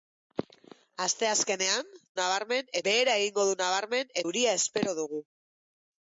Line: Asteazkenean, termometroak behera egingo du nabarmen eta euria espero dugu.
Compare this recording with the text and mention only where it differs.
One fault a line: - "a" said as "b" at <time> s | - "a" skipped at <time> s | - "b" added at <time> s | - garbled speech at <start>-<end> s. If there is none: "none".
- "termometroak" said as "nabarmen" at 2.2 s
- "eta" skipped at 4.2 s